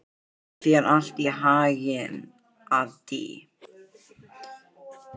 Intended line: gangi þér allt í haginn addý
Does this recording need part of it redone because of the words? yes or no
no